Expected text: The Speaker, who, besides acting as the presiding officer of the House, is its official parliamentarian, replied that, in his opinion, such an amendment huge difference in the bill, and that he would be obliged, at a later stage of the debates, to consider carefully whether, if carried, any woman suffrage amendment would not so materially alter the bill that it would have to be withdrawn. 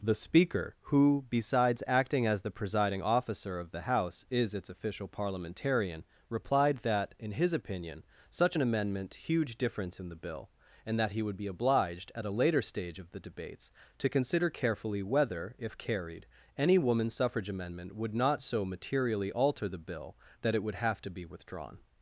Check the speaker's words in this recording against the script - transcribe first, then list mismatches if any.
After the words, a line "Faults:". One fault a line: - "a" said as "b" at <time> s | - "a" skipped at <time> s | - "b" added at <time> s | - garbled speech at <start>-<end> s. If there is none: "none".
The Speaker, who, besides acting as the presiding officer of the House, is its official parliamentarian, replied that, in his opinion, such an amendment huge difference in the bill, and that he would be obliged, at a later stage of the debates, to consider carefully whether, if carried, any woman suffrage amendment would not so materially alter the bill that it would have to be withdrawn.
Faults:
none